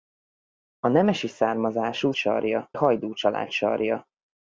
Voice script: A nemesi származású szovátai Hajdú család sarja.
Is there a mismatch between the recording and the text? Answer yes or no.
yes